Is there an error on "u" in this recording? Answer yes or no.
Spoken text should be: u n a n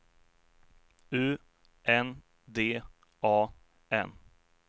no